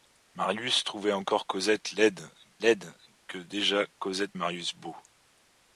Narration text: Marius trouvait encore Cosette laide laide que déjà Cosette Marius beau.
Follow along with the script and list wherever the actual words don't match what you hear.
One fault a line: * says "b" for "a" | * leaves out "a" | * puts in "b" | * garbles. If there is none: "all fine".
all fine